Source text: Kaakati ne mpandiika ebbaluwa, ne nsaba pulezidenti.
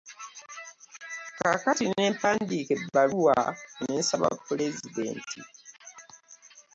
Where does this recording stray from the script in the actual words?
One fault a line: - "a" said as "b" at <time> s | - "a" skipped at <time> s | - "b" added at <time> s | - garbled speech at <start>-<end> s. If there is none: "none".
none